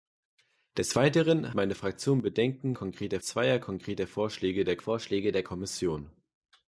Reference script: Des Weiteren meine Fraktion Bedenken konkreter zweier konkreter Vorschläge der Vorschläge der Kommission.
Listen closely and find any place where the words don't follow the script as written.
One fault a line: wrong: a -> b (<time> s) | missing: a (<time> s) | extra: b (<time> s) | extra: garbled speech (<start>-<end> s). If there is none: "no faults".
no faults